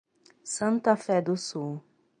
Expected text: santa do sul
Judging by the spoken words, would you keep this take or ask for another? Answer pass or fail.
fail